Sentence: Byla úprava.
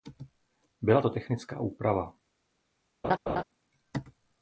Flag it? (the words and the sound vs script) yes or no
yes